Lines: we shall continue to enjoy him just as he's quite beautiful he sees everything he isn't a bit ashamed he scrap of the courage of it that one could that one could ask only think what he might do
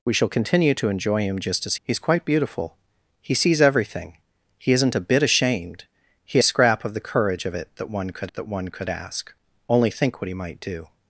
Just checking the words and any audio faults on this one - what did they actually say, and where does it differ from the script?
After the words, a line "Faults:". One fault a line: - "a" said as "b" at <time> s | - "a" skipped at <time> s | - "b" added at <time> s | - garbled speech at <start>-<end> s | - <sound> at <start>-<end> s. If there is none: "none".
we shall continue to enjoy him just as he's quite beautiful he sees everything he isn't a bit ashamed he scrap of the courage of it that one could that one could ask only think what he might do
Faults:
none